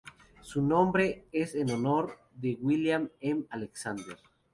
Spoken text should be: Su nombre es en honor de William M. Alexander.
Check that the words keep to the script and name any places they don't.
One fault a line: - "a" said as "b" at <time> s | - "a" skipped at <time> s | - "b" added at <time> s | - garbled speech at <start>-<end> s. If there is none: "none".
none